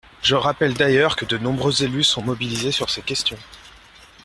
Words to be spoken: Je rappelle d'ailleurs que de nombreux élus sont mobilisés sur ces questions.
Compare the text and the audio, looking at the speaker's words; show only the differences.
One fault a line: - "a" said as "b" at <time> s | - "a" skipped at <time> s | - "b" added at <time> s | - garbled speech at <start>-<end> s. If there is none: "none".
none